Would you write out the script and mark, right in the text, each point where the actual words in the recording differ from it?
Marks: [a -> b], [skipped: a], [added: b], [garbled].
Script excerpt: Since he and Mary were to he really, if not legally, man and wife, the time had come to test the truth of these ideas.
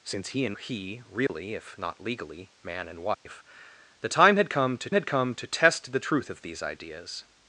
Since he and [skipped: Mary were to] he really, if not legally, man and wife, the time had come to [added: had come to] test the truth of these ideas.